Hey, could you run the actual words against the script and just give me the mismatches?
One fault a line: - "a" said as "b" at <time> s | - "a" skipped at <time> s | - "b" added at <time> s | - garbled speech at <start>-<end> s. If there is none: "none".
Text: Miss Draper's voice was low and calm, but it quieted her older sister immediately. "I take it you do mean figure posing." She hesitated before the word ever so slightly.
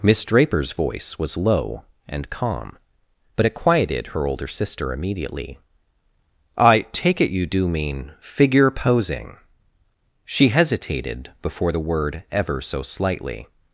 none